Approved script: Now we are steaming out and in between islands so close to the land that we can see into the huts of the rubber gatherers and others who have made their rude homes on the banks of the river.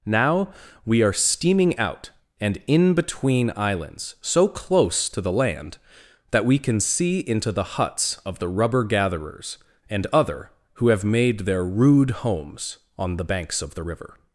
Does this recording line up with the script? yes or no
no